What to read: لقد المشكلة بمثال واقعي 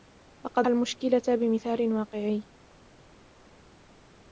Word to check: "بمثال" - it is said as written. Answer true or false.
true